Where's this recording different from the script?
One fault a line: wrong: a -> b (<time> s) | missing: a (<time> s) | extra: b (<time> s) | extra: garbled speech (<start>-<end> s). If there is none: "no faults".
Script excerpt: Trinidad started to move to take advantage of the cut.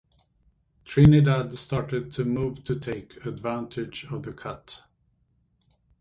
no faults